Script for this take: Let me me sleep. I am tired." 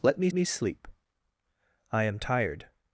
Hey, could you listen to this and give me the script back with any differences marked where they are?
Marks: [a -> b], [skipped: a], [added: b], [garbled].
Let me me sleep. I am tired."